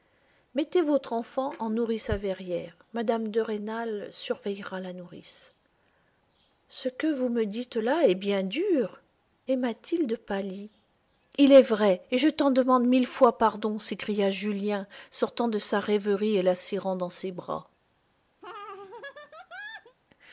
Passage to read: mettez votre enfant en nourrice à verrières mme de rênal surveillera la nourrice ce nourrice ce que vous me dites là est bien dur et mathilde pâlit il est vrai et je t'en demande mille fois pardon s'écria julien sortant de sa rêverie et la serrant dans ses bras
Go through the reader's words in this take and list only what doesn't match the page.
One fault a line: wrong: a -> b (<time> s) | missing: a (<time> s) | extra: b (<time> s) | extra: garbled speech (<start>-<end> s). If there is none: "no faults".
missing: nourrice ce (6.9 s)